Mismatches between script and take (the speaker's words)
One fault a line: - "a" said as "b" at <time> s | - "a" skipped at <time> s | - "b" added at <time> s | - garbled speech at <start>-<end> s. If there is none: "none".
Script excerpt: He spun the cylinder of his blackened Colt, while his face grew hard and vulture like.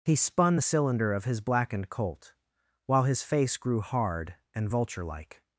none